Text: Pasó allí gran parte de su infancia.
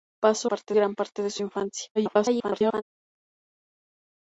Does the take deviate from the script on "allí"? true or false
true